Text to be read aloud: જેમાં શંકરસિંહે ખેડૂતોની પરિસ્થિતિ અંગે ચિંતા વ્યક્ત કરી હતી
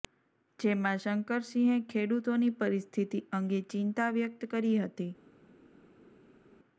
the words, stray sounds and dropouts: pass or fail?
pass